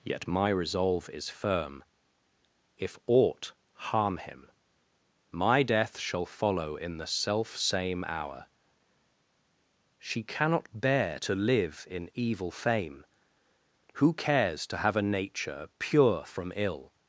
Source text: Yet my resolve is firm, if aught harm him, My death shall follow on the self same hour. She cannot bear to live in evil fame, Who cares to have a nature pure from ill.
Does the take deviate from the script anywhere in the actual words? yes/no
yes